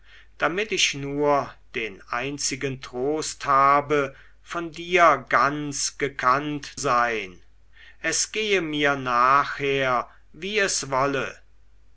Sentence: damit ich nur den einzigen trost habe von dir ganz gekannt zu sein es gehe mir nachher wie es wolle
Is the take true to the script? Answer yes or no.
no